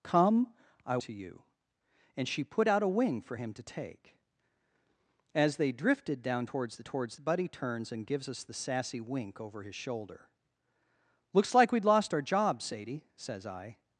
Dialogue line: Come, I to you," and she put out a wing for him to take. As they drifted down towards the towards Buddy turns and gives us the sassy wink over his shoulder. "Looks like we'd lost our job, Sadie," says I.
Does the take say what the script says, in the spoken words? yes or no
yes